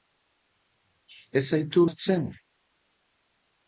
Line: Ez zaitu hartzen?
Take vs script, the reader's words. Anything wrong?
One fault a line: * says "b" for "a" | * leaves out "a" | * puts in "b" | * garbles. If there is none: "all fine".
all fine